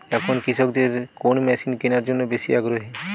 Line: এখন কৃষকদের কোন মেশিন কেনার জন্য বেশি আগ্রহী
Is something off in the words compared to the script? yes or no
no